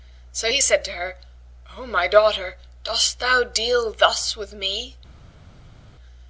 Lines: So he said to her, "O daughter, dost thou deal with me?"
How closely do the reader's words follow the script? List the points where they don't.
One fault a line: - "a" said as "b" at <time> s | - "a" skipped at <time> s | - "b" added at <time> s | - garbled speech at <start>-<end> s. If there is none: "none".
- "my" added at 1.9 s
- "thus" added at 3.9 s